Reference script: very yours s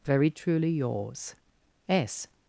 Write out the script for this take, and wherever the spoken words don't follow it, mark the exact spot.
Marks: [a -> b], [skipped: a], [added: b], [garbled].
very [added: truly] yours s